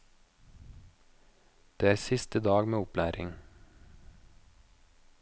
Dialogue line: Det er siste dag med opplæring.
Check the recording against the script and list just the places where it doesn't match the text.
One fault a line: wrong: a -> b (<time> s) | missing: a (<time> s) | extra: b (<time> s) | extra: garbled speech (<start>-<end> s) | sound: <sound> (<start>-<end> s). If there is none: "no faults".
no faults